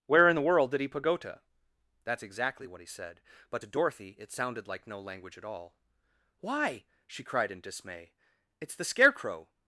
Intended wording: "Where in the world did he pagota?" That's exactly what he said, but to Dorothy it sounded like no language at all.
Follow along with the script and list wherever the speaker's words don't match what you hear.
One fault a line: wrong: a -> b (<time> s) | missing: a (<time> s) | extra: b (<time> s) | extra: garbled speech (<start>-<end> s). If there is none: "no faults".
extra: Why she cried in dismay it's the Scarecrow (6.4 s)